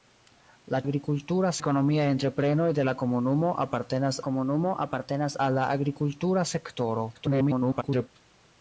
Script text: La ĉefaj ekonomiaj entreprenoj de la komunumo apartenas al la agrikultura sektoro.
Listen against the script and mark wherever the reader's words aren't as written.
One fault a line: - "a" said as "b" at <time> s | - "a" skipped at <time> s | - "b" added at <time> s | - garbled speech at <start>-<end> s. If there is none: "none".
- "ĉefaj" said as "agrikultura" at 0.8 s
- "komunumo apartenas" added at 4.3 s
- garbled speech at 7.1-8.1 s